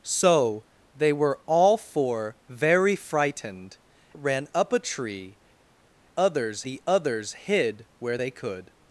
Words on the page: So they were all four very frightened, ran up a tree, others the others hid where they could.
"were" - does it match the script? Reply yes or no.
yes